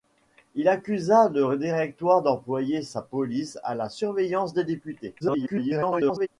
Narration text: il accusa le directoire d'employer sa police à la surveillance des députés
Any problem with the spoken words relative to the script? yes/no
yes